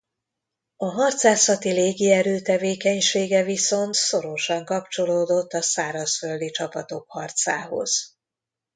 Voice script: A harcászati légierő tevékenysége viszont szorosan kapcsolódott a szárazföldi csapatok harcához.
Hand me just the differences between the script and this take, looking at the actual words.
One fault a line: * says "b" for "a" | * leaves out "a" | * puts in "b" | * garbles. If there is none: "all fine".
all fine